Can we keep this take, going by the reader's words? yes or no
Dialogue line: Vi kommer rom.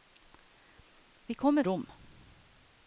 yes